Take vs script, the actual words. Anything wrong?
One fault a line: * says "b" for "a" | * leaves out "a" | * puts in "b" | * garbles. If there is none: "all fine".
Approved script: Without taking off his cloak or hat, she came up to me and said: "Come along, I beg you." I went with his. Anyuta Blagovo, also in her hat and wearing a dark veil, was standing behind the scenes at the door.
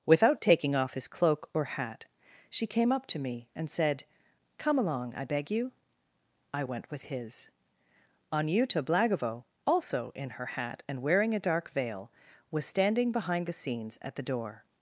all fine